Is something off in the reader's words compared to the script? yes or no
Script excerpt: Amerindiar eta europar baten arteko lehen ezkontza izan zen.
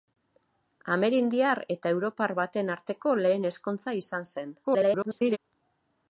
yes